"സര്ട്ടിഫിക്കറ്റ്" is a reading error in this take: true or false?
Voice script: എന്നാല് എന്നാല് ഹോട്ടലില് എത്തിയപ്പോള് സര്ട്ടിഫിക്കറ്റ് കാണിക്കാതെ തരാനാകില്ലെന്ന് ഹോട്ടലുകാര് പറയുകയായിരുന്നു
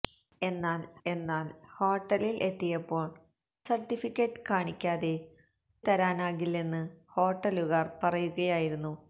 false